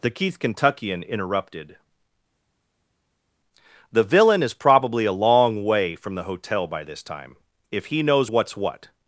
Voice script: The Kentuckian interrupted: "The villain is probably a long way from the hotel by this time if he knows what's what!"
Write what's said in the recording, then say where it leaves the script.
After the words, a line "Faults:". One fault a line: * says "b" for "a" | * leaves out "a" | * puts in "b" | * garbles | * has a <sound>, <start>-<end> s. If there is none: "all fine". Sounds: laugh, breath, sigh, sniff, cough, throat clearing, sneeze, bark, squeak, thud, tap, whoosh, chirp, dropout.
The keith Kentuckian interrupted: "The villain is probably a long way from the hotel by this time if he knows what's what!"
Faults:
* puts in "keith"